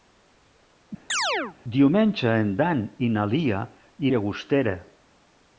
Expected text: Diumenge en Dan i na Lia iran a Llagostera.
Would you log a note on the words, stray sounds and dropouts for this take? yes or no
yes